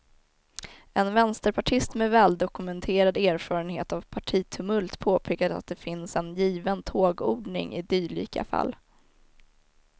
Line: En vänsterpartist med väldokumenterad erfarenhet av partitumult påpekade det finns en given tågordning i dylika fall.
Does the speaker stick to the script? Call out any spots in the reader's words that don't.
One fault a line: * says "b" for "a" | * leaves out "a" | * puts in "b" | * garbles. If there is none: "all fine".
* puts in "att"